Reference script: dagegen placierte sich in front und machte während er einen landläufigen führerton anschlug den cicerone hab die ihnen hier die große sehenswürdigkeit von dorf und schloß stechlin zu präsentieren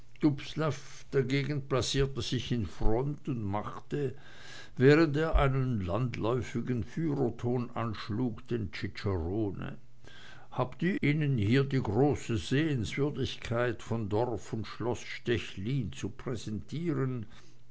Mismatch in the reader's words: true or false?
false